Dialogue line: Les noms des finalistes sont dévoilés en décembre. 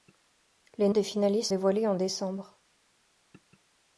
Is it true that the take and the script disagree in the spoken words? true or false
true